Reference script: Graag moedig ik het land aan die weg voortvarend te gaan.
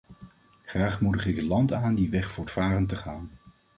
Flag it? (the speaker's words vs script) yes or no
no